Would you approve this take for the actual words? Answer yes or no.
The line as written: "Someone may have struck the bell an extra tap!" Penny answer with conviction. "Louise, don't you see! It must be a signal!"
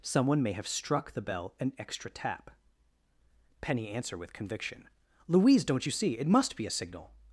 yes